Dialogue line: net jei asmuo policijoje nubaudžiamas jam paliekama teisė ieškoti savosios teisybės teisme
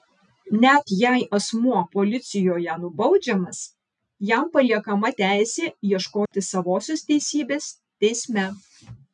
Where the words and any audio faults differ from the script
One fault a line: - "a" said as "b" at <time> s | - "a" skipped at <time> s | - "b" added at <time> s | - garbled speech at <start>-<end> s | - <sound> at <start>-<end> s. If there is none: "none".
- dropout at 6.3-6.3 s